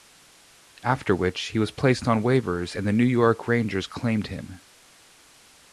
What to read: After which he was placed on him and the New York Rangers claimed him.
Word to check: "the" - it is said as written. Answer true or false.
true